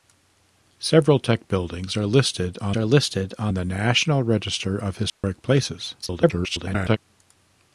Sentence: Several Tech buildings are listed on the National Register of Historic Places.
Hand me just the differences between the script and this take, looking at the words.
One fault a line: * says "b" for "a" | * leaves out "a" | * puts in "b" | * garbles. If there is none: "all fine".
* puts in "are listed on"
* garbles